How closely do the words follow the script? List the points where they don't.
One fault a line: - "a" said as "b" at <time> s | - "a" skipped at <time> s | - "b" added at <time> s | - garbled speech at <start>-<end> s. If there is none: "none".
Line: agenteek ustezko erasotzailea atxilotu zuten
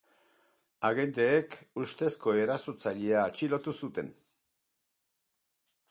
none